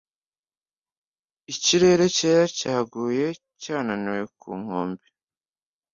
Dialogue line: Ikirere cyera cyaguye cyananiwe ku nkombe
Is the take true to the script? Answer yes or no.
yes